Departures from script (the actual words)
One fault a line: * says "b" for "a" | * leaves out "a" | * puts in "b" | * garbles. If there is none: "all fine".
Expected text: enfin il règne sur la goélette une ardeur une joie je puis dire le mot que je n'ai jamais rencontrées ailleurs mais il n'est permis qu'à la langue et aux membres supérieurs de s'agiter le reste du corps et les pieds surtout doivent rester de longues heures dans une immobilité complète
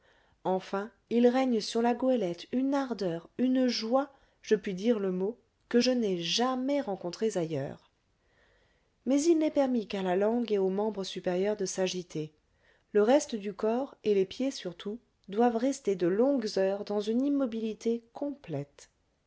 all fine